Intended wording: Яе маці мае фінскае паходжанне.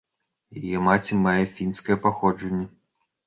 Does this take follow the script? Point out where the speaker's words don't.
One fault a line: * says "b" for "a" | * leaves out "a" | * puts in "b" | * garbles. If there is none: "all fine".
all fine